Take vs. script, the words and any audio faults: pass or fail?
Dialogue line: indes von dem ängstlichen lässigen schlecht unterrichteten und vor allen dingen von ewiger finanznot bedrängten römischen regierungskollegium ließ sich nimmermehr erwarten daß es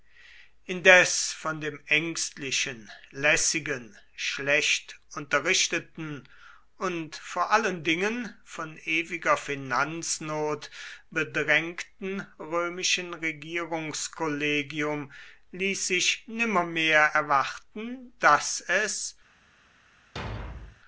fail